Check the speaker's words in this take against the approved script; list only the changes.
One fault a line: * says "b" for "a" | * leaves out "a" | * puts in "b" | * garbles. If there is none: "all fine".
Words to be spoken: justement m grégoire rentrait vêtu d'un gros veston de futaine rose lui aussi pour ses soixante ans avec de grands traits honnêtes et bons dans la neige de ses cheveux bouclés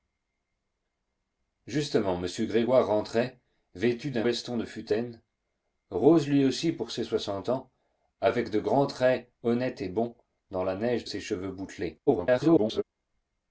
* leaves out "gros"
* leaves out "de"
* garbles